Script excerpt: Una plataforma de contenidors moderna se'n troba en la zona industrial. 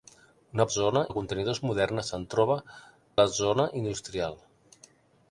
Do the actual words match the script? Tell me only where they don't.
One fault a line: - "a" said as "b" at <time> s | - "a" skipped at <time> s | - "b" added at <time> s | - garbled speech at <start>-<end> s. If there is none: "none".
- "plataforma" said as "zona" at 0.8 s
- "en" skipped at 2.6 s